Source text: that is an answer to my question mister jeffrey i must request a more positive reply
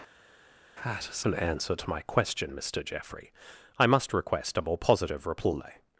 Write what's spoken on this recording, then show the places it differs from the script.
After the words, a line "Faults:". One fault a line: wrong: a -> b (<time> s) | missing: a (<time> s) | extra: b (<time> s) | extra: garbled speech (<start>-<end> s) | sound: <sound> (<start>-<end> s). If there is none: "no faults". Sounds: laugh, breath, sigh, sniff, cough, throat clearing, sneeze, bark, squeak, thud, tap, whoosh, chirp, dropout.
that is an answer to my question mister jeffrey i must request a more positive reply
Faults:
no faults